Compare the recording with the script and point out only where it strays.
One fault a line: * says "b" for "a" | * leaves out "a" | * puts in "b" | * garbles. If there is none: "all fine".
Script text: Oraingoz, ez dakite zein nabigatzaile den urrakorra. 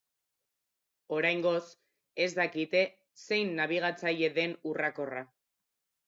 all fine